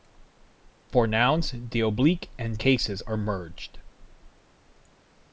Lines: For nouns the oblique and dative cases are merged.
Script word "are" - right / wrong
right